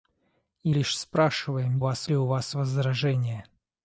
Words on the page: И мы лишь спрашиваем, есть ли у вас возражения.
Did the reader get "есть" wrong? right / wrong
wrong